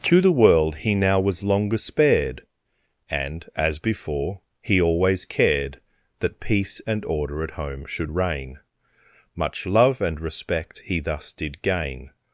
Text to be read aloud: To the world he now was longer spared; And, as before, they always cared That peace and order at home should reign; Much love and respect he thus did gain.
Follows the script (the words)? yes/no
no